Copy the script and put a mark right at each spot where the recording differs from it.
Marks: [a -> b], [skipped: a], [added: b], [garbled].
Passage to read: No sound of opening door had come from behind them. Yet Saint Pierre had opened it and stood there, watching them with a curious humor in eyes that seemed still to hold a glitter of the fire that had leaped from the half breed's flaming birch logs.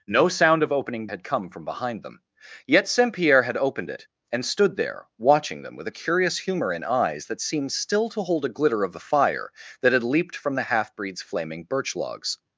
No sound of opening [skipped: door] had come from behind them. Yet Saint Pierre had opened it and stood there, watching them with a curious humor in eyes that seemed still to hold a glitter of the fire that had leaped from the half breed's flaming birch logs.